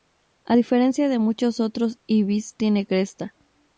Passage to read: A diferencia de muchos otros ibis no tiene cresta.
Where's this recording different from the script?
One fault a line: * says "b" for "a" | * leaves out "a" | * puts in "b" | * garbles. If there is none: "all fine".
* leaves out "no"